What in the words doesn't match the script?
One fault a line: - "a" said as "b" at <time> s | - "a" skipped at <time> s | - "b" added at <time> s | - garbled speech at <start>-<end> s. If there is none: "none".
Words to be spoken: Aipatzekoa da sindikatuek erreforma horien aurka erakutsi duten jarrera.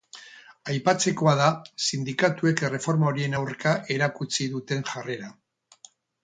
none